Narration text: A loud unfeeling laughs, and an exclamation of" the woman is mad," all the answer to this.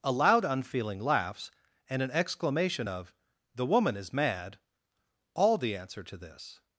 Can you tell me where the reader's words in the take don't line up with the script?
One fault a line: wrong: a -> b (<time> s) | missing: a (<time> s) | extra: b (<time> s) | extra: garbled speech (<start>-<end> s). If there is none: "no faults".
no faults